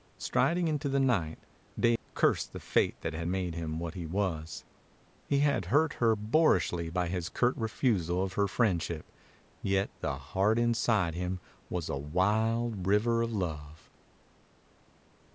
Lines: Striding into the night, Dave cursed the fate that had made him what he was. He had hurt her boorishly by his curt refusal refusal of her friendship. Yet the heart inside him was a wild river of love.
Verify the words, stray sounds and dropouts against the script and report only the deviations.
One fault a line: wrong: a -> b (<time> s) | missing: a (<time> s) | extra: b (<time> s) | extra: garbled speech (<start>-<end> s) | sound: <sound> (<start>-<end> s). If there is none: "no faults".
sound: dropout (2.0-2.1 s)
missing: refusal (8.2 s)